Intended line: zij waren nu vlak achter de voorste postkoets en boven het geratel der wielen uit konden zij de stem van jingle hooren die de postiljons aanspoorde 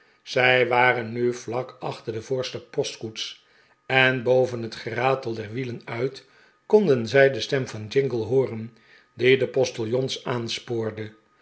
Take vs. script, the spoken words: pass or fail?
pass